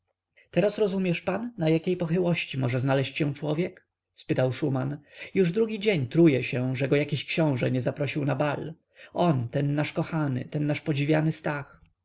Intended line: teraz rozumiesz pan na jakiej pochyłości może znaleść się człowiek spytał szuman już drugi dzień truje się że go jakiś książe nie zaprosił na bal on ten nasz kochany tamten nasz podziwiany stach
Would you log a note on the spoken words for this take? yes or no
yes